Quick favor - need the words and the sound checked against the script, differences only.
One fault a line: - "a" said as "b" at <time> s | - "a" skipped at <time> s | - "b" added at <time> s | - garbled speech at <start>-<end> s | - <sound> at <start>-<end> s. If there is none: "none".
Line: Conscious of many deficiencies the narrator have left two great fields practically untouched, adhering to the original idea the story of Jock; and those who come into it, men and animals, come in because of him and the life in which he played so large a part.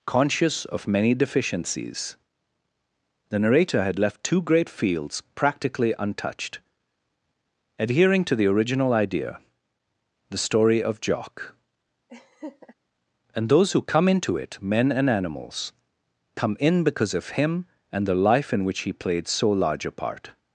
- "have" said as "had" at 3.8 s
- laugh at 12.1-12.7 s